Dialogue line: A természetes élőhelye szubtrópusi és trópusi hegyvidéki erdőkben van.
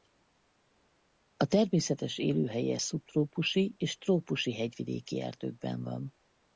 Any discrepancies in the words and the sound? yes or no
no